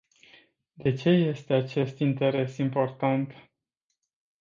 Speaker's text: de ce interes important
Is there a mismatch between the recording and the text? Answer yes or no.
yes